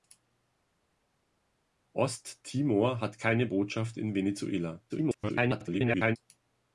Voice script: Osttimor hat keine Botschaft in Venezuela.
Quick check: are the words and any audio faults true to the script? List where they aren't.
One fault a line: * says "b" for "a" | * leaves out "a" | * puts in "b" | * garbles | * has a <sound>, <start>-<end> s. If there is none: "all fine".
* garbles